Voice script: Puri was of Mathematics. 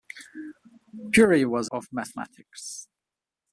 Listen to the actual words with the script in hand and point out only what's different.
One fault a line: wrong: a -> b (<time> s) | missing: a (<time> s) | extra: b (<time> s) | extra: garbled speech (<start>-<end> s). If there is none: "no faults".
no faults